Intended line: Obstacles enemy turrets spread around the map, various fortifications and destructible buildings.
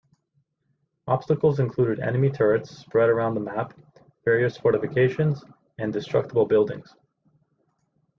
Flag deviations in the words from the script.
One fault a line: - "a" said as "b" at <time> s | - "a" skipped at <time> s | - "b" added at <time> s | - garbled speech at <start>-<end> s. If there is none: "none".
- "included" added at 1.6 s